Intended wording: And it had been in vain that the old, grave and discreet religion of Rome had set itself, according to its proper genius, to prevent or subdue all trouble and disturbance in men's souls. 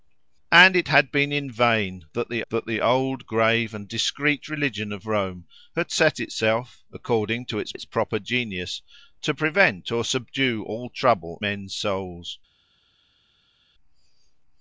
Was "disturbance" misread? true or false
true